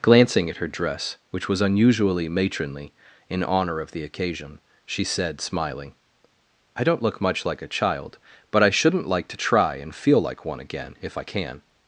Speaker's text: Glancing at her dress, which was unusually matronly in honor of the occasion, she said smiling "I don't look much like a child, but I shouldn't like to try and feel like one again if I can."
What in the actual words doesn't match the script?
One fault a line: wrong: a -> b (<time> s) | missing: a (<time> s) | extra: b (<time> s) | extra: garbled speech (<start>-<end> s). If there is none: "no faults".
no faults